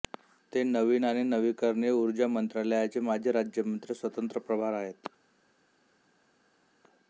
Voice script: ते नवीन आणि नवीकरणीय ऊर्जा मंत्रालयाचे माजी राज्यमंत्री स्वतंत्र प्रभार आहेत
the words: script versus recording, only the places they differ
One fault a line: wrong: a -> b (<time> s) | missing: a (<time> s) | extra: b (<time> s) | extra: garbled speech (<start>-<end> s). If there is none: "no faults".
no faults